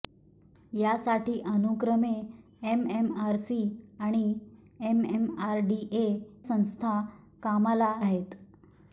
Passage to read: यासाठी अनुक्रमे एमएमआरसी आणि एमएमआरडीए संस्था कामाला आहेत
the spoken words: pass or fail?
pass